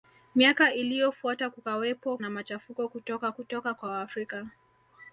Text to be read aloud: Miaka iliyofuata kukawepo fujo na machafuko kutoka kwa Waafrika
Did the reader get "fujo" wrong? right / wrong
wrong